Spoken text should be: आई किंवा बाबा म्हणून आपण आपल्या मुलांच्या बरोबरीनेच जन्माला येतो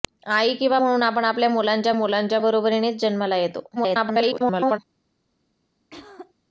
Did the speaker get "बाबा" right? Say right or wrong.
wrong